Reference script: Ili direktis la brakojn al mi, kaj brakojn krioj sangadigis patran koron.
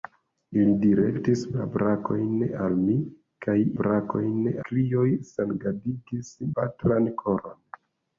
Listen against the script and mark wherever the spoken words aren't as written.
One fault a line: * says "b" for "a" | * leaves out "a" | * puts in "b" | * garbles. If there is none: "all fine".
all fine